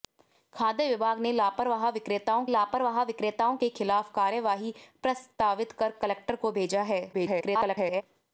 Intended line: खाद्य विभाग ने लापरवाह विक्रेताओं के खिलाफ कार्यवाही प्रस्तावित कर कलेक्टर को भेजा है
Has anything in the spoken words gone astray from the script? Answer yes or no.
yes